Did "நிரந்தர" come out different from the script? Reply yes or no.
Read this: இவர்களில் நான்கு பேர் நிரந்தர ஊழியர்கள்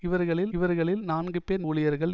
yes